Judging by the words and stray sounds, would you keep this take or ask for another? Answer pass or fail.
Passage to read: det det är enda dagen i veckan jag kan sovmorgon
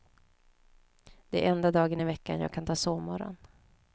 fail